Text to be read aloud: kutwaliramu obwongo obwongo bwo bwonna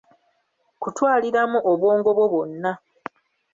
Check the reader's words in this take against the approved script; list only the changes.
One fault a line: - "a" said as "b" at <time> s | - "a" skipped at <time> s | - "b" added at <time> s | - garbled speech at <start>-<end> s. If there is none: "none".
- "obwongo" skipped at 2.1 s